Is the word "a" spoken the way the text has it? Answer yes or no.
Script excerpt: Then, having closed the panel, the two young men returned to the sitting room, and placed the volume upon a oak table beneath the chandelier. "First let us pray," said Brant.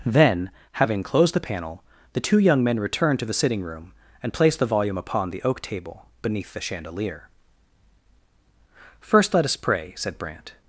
no